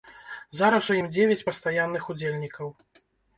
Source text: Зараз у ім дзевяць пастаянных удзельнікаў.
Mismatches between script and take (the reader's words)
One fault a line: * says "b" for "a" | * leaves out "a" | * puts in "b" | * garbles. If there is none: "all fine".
all fine